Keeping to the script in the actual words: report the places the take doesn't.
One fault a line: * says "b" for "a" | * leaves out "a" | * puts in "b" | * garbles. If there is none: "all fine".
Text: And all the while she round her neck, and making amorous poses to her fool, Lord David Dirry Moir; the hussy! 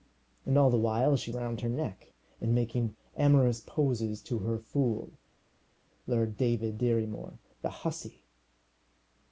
all fine